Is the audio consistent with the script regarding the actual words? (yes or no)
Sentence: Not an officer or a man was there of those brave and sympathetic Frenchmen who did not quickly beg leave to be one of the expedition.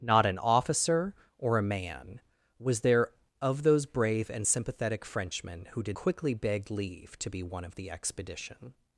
no